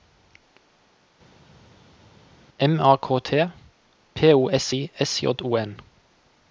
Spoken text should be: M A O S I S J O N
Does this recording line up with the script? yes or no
no